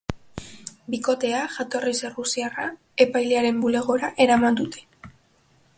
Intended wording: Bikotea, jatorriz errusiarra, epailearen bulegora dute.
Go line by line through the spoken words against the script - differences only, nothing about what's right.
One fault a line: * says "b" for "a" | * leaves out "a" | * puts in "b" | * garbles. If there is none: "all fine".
* puts in "eraman"